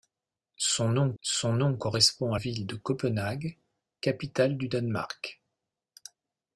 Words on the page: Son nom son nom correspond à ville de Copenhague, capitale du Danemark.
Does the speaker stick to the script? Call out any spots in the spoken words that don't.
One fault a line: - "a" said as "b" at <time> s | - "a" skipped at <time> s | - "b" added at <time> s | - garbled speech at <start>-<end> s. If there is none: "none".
none